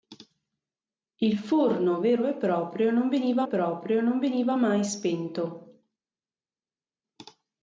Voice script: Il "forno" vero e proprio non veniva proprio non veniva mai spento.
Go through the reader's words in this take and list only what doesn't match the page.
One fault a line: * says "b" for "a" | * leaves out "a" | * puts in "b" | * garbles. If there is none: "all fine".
all fine